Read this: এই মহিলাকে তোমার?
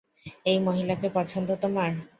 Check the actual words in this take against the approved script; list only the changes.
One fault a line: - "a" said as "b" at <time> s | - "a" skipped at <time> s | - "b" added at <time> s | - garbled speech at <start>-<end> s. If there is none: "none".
- "পছন্দ" added at 1.2 s